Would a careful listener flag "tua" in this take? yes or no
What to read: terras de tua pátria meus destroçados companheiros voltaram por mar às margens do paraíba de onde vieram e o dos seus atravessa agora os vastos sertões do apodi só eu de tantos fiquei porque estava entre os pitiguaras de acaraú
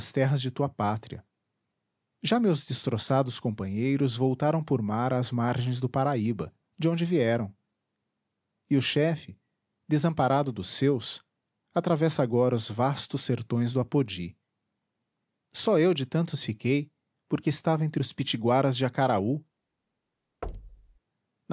no